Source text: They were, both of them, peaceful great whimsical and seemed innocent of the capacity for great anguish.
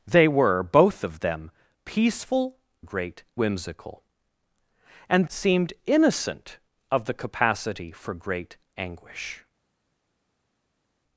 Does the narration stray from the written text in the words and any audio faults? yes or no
no